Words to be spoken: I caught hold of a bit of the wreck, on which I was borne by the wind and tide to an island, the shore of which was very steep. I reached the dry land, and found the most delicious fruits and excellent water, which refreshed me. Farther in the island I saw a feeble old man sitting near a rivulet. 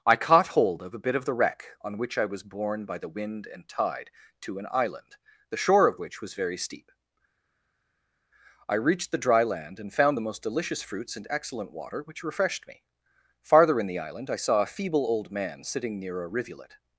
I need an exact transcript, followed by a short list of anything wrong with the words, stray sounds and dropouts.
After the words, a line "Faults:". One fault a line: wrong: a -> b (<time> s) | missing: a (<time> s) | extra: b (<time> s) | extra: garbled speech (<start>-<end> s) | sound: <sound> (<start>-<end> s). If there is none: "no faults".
I caught hold of a bit of the wreck, on which I was borne by the wind and tide to an island, the shore of which was very steep. I reached the dry land, and found the most delicious fruits and excellent water, which refreshed me. Farther in the island I saw a feeble old man sitting near a rivulet.
Faults:
no faults